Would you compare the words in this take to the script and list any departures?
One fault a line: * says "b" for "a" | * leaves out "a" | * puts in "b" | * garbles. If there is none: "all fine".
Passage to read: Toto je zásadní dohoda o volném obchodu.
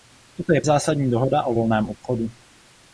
all fine